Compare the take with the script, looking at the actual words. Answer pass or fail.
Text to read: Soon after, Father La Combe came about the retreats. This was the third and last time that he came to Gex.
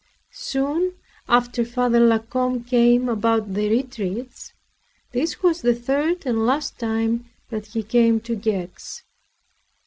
pass